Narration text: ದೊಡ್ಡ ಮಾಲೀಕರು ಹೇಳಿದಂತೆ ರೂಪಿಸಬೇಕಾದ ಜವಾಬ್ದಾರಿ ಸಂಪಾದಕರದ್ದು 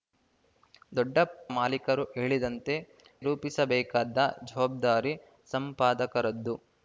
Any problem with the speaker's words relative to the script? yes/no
no